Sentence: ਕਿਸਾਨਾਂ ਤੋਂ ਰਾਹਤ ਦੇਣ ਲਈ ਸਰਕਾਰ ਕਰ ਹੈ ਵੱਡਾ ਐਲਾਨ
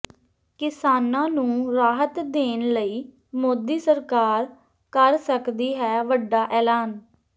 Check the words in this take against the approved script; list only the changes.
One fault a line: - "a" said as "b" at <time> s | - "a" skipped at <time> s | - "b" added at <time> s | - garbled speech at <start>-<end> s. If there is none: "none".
- "ਤੋਂ" said as "ਨੂੰ" at 1.3 s
- "ਮੋਦੀ" added at 3.4 s
- "ਸਕਦੀ" added at 5.2 s